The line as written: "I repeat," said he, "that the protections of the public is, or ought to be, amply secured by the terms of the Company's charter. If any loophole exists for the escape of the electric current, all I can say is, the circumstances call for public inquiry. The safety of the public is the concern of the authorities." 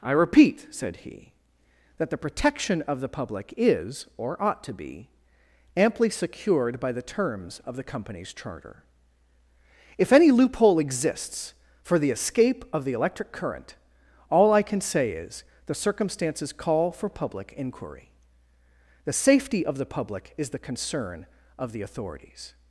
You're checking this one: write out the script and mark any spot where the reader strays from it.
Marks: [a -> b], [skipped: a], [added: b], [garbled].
"I repeat," said he, "that the [protections -> protection] of the public is, or ought to be, amply secured by the terms of the Company's charter. If any loophole exists for the escape of the electric current, all I can say is, the circumstances call for public inquiry. The safety of the public is the concern of the authorities."